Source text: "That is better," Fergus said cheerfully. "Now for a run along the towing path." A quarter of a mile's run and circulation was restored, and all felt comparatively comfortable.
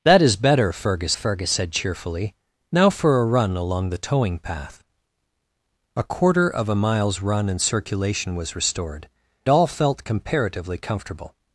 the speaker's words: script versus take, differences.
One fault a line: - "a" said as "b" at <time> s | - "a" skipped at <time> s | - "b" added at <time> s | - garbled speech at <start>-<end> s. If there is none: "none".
- "Fergus" added at 1.1 s
- "and" skipped at 9.1 s